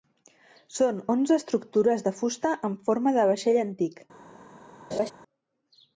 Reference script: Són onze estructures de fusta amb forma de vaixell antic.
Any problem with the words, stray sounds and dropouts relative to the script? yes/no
yes